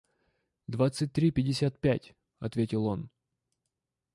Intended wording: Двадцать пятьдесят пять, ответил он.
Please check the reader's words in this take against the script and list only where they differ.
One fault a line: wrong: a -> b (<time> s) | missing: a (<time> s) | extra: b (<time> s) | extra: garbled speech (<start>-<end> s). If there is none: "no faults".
extra: три (1.1 s)